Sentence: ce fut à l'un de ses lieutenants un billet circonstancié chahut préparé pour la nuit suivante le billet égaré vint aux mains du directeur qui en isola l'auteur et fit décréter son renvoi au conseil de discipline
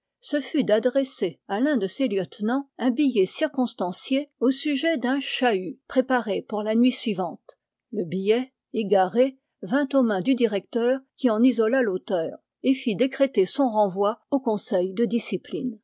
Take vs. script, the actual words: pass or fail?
fail